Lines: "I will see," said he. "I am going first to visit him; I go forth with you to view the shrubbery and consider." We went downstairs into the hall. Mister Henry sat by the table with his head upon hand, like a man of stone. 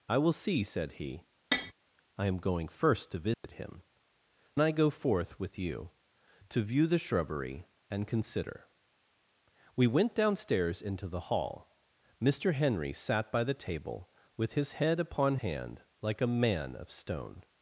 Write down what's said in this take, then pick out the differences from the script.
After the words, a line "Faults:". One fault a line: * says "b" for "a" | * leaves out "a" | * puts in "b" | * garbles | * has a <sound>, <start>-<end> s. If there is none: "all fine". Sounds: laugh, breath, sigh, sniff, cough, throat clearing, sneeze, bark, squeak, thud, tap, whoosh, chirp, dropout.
"I will see," said he. "I am going first to visit him; I go forth with you to view the shrubbery and consider." We went downstairs into the hall. Mister Henry sat by the table with his head upon hand, like a man of stone.
Faults:
* has a tap, 1.5-1.7 s
* has a dropout, 3.3-3.4 s